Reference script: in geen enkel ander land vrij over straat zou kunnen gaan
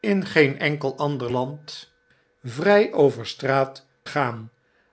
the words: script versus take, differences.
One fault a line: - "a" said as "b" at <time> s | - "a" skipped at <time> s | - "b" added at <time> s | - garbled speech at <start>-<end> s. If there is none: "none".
- "zou kunnen" skipped at 3.8 s